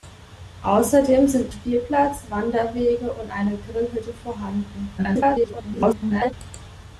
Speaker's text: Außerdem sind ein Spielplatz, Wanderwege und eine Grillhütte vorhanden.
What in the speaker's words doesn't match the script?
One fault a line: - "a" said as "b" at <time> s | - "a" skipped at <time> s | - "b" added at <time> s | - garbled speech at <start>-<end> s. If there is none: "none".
- "ein" skipped at 1.5 s
- garbled speech at 5.0-6.3 s